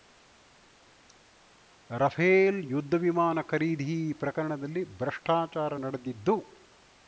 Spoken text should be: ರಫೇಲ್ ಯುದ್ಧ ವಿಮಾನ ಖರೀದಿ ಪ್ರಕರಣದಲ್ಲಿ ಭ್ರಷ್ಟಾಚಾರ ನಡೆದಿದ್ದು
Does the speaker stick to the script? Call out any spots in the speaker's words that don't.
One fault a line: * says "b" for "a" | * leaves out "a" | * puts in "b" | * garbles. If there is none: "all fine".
all fine